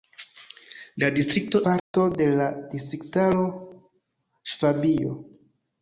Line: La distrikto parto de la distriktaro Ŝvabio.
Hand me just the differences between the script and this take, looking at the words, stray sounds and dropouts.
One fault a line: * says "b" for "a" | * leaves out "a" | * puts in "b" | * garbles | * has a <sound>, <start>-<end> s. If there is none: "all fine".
* has a dropout, 1.8-1.9 s